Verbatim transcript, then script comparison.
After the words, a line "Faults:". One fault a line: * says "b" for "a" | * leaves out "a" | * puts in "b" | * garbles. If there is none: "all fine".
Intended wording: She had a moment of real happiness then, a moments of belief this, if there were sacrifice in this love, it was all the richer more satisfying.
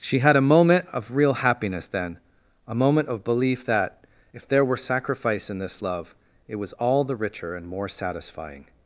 She had a moment of real happiness then, a moment of belief that, if there were sacrifice in this love, it was all the richer and more satisfying.
Faults:
* says "moment" for "moments"
* says "that" for "this"
* puts in "and"